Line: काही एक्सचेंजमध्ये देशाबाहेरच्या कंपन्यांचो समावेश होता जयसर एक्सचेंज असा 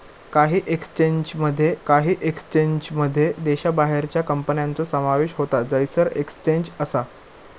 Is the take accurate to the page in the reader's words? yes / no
no